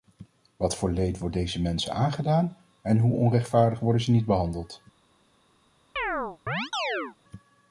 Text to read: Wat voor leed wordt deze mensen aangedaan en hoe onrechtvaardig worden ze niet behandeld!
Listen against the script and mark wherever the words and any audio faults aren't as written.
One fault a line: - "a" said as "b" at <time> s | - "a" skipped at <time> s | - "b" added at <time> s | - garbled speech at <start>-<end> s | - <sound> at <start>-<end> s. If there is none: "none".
- chirp at 6.0-7.2 s